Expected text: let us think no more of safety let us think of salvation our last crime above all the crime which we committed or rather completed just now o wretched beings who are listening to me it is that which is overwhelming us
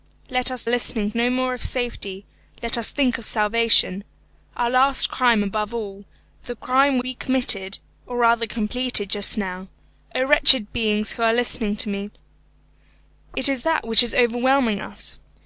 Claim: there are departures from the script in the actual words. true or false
true